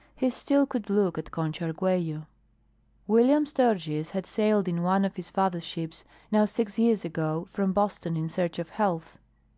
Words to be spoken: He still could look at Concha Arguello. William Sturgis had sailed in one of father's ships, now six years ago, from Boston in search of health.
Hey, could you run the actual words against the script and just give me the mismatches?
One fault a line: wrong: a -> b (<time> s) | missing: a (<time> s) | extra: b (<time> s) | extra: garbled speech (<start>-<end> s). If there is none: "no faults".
extra: his (5.1 s)